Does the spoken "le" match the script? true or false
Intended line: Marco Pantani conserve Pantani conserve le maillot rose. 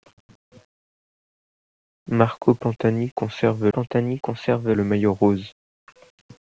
true